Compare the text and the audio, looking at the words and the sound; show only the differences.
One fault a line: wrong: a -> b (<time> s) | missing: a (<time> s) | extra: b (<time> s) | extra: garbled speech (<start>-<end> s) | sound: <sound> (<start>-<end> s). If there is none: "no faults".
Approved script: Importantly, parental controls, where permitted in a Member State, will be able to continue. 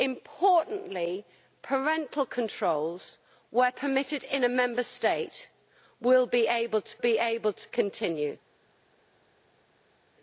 extra: be able to (7.0 s)